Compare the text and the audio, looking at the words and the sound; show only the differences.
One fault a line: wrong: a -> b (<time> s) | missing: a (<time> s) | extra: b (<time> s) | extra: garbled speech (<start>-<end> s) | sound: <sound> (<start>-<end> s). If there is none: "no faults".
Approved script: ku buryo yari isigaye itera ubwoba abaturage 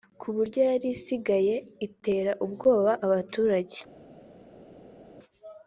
no faults